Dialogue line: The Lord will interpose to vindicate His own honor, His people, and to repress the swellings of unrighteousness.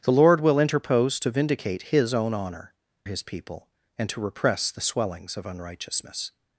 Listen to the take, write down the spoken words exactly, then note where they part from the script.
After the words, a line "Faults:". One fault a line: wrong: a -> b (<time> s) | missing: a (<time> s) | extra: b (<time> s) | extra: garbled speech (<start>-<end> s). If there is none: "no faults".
The Lord will interpose to vindicate His own honor, His people, and to repress the swellings of unrighteousness.
Faults:
no faults